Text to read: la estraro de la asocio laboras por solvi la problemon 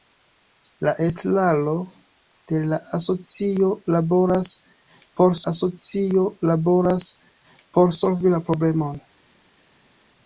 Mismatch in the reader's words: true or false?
true